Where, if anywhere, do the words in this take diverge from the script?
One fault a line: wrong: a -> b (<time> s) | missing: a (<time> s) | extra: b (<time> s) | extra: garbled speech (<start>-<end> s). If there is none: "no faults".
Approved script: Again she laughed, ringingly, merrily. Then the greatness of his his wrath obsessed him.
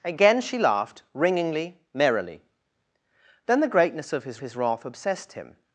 no faults